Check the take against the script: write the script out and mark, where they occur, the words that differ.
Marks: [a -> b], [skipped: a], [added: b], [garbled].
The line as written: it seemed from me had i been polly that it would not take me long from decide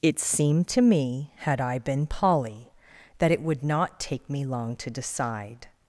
it seemed [from -> to] me had i been polly that it would not take me long [from -> to] decide